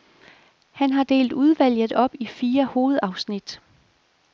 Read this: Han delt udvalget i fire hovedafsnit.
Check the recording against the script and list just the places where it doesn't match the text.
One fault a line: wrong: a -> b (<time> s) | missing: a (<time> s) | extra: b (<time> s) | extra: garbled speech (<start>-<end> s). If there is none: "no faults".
extra: har (0.9 s)
extra: op (1.9 s)